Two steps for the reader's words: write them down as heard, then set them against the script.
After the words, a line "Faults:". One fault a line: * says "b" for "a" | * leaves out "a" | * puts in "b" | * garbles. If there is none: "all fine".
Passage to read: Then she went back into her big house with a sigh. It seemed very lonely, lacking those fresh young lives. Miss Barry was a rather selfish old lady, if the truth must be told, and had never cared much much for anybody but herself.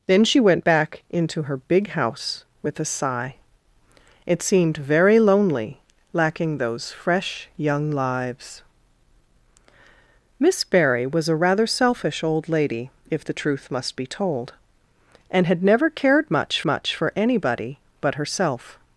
Then she went back into her big house with a sigh. It seemed very lonely, lacking those fresh young lives. Miss Barry was a rather selfish old lady, if the truth must be told, and had never cared much much for anybody but herself.
Faults:
all fine